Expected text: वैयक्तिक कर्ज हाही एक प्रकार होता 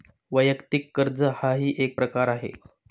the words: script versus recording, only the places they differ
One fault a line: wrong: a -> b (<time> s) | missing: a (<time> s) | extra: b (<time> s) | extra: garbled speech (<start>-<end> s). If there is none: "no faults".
wrong: होता -> आहे (2.3 s)